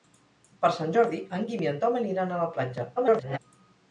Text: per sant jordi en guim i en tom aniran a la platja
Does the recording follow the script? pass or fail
fail